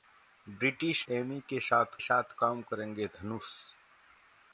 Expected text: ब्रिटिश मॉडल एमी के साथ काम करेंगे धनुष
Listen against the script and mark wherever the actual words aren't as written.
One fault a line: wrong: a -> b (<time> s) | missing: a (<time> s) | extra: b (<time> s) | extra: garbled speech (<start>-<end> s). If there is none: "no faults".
missing: मॉडल (1.1 s)
extra: साथ (2.0 s)